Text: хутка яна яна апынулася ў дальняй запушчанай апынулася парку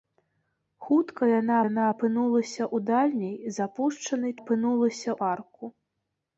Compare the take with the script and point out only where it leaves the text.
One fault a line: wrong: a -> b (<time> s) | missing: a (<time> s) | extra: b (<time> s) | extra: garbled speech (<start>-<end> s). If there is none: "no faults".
no faults